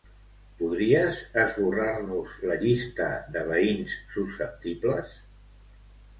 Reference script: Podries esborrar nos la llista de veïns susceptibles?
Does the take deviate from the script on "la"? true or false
false